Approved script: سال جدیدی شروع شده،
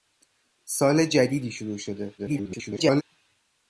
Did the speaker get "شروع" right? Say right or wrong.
right